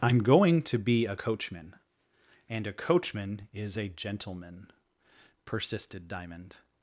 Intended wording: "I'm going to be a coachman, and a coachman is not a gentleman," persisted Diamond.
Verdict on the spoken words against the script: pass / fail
fail